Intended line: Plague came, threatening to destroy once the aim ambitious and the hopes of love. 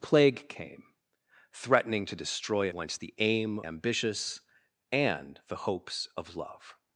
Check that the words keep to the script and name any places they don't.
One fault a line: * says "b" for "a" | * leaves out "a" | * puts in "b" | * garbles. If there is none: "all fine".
all fine